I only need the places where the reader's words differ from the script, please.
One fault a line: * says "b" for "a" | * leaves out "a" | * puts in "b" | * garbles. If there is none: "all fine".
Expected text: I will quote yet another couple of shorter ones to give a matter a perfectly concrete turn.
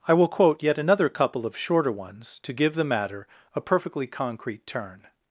* says "the" for "a"